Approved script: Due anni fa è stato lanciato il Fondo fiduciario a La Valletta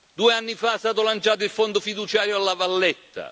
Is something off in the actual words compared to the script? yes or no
no